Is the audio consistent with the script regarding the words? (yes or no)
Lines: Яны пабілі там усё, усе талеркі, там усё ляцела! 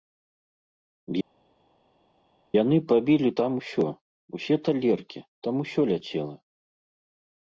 yes